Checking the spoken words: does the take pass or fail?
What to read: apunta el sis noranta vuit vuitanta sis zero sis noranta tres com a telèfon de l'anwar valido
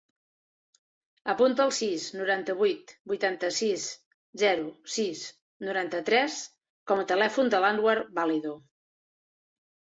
pass